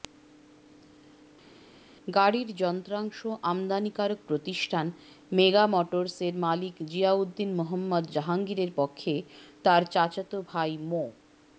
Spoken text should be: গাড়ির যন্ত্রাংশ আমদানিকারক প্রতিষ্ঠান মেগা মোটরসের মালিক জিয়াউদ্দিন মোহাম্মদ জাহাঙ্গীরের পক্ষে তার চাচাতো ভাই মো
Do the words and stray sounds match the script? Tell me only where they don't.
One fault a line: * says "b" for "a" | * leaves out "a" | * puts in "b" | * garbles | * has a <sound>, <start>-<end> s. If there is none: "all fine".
all fine